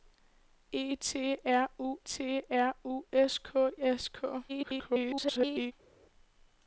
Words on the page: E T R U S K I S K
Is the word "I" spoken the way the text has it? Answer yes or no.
no